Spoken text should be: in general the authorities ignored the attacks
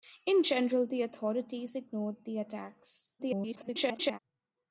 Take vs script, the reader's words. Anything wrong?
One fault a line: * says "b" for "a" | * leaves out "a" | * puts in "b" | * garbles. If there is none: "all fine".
* garbles